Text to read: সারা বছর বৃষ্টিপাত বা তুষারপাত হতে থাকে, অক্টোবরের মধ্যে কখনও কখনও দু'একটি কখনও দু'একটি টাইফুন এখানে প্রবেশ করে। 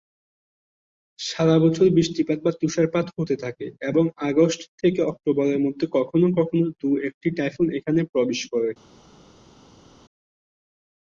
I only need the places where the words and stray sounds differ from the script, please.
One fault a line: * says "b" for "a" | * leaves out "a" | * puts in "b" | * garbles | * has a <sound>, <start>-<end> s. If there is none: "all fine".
* puts in "এবং আগস্ট থেকে"
* leaves out "কখনও দু'একটি"